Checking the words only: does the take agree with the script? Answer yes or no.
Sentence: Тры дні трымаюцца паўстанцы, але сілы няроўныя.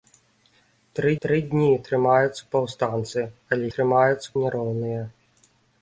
no